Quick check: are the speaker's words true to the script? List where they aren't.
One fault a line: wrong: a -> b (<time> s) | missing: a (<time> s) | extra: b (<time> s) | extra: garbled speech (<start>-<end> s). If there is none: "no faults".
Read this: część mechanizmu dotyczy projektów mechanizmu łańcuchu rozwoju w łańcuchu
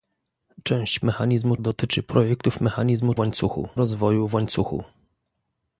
no faults